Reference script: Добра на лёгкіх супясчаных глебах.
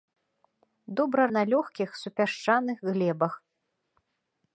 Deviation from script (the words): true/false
false